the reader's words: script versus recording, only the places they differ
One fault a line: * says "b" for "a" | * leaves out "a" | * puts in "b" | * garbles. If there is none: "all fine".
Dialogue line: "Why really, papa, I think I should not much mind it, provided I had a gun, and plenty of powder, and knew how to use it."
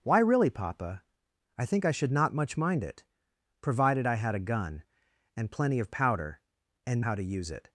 * leaves out "knew"